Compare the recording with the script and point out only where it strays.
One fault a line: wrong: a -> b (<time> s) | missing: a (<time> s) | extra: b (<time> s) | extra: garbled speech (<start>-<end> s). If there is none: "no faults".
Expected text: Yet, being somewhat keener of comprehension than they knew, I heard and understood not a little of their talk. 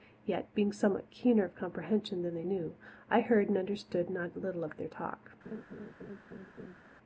no faults